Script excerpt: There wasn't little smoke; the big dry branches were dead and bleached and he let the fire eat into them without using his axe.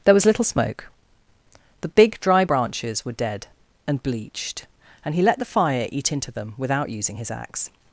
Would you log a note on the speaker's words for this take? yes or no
yes